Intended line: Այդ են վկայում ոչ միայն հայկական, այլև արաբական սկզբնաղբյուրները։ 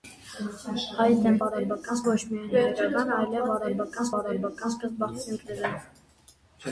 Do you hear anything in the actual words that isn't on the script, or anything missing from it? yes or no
yes